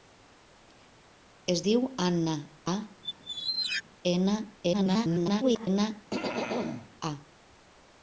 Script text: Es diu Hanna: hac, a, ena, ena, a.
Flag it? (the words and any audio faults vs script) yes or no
yes